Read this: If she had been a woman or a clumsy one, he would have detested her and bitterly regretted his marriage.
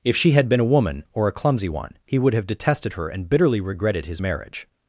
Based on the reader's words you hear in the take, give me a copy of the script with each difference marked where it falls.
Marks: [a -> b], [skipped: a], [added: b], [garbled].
If she had been a woman or a clumsy one, he would have detested her and bitterly regretted his marriage.